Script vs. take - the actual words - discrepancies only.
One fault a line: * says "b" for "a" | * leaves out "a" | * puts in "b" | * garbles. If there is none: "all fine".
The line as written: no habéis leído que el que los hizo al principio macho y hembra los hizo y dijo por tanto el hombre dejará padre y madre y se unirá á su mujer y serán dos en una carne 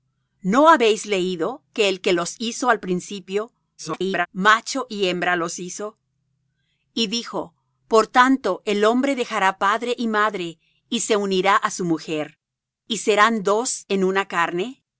* garbles